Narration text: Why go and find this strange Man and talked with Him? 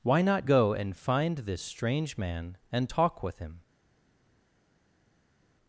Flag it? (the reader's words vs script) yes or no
yes